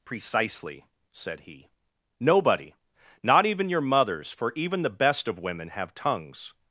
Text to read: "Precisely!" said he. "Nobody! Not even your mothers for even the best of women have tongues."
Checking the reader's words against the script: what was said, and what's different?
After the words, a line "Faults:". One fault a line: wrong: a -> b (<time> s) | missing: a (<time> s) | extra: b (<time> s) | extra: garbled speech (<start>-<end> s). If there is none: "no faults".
"Precisely!" said he. "Nobody! Not even your mothers for even the best of women have tongues."
Faults:
no faults